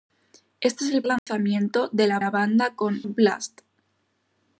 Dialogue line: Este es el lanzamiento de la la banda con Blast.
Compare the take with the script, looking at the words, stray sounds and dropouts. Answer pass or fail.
fail